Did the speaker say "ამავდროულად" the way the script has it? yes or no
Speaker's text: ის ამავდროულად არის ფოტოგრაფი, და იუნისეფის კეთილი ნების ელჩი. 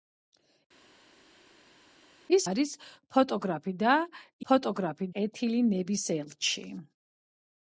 no